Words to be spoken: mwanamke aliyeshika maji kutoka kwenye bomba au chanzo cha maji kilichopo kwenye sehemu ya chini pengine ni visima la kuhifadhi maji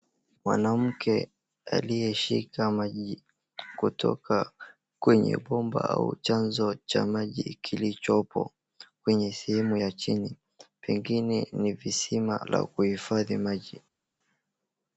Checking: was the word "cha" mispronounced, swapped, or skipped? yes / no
no